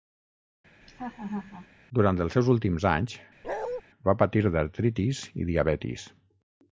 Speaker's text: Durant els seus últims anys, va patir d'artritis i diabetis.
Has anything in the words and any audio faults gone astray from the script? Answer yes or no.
yes